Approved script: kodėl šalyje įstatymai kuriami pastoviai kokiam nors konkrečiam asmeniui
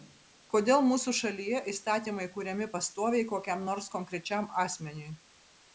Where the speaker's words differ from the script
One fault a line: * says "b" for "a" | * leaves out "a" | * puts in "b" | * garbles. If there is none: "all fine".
* puts in "mūsų"